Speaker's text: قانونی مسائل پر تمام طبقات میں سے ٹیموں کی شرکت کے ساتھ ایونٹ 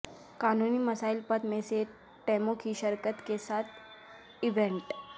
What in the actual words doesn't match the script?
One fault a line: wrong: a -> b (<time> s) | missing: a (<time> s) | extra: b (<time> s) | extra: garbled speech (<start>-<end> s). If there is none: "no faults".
missing: تمام طبقات (1.4 s)